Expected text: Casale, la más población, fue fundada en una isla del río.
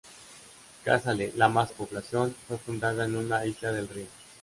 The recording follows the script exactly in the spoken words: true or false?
true